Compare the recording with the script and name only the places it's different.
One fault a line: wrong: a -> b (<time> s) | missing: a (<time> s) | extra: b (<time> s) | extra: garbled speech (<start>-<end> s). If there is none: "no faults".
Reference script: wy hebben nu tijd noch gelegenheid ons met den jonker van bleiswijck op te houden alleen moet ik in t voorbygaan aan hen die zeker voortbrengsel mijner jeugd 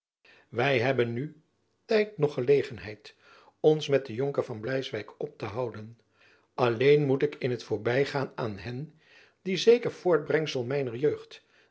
no faults